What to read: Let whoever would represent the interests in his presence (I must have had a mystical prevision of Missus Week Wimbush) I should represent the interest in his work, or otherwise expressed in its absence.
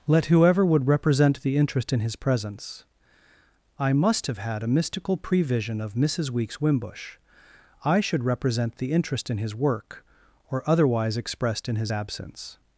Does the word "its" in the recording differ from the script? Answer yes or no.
yes